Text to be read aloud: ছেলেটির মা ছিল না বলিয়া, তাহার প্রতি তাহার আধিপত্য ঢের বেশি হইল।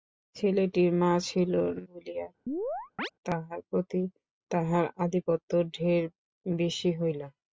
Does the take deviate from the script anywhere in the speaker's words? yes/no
yes